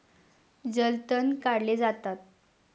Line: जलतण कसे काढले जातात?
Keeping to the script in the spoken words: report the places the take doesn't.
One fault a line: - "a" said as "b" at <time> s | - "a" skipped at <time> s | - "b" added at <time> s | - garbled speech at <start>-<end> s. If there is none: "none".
- "कसे" skipped at 1.3 s